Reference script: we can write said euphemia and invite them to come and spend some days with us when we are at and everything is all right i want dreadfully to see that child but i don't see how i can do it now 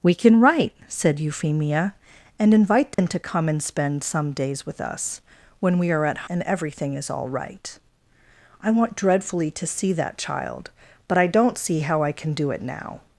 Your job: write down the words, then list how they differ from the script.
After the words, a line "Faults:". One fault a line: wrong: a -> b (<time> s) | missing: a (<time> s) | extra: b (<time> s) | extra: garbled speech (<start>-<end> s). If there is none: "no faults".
we can write said euphemia and invite them to come and spend some days with us when we are at and everything is all right i want dreadfully to see that child but i don't see how i can do it now
Faults:
no faults